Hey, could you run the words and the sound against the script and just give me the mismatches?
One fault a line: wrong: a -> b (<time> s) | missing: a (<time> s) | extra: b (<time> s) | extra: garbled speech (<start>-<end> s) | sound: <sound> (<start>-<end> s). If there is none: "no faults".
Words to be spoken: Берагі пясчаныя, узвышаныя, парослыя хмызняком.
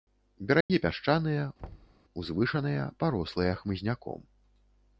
sound: dropout (0.6-0.7 s)
sound: thud (1.6-2.0 s)